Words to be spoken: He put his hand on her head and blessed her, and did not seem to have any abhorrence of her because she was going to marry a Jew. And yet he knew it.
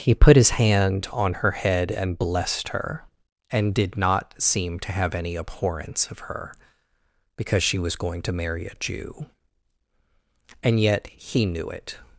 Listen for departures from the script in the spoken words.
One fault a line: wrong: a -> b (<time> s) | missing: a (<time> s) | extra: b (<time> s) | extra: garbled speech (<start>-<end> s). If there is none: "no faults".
no faults